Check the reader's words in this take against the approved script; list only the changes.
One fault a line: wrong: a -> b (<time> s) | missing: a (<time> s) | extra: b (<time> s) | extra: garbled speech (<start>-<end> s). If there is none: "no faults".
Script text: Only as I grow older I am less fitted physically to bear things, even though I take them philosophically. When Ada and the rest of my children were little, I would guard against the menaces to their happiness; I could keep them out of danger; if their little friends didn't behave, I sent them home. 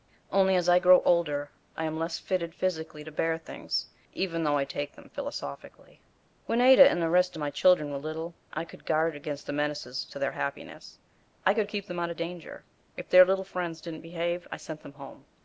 wrong: would -> could (8.6 s)